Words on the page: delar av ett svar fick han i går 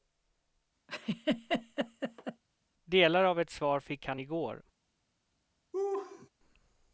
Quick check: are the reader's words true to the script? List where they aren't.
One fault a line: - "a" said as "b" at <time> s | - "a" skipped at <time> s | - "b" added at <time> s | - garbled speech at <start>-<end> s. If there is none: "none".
none